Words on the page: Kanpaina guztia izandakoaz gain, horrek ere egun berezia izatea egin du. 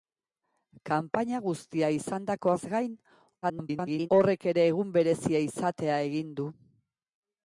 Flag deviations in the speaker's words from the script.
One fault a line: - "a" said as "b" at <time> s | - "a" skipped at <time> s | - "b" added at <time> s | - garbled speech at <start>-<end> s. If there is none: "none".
- garbled speech at 3.4-4.1 s